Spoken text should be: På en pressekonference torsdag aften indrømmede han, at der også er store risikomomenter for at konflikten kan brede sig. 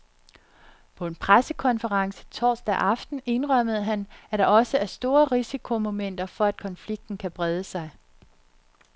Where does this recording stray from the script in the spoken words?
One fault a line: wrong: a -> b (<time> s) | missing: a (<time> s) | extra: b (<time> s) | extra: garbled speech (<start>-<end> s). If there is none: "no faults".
no faults